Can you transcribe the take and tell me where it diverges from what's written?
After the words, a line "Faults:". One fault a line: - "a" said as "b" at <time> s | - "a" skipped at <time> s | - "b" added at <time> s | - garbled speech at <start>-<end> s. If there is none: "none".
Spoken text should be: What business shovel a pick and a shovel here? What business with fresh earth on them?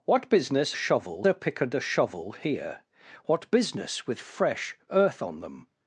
What business shovel a pick and a shovel here? What business with fresh earth on them?
Faults:
none